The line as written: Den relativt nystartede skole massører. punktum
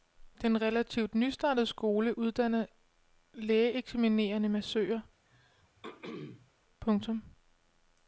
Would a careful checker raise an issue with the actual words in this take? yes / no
yes